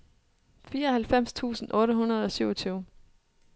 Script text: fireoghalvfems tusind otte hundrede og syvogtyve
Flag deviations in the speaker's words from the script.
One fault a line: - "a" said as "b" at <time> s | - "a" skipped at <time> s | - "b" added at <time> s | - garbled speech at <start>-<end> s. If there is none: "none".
none